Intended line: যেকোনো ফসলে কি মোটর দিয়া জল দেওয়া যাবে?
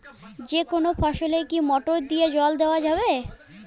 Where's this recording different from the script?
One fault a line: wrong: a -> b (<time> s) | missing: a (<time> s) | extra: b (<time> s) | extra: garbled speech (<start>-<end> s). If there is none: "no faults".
no faults